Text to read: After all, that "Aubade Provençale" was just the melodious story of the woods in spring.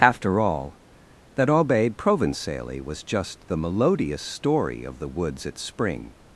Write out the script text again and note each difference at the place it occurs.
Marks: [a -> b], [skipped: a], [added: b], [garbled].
After all, that "Aubade Provençale" was just the melodious story of the woods [in -> at] spring.